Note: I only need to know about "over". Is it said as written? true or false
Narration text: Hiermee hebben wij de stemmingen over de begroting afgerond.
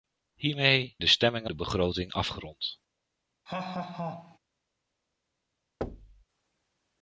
false